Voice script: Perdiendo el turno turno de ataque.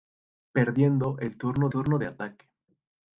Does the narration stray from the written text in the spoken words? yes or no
no